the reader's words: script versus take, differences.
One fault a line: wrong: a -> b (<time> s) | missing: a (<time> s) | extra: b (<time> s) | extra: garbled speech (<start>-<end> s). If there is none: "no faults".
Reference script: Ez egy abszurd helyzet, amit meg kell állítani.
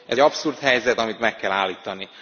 missing: egy (0.2 s)